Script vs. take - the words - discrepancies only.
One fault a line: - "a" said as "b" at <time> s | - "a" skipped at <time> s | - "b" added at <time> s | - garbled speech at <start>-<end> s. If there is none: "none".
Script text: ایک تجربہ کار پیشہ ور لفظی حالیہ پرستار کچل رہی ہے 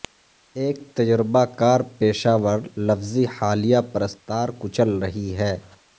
none